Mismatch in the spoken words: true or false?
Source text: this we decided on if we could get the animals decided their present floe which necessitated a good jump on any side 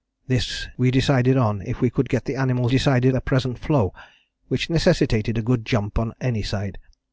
false